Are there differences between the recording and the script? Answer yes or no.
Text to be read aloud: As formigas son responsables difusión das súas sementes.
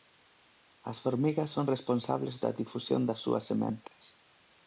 yes